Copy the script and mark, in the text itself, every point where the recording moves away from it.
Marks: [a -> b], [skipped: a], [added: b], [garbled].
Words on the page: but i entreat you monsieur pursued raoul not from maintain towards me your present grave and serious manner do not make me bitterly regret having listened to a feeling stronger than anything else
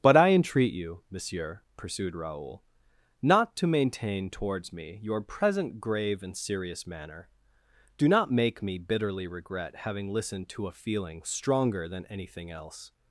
but i entreat you monsieur pursued raoul not [from -> to] maintain towards me your present grave and serious manner do not make me bitterly regret having listened to a feeling stronger than anything else